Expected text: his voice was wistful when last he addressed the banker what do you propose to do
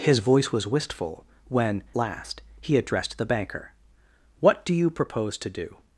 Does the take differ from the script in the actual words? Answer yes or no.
no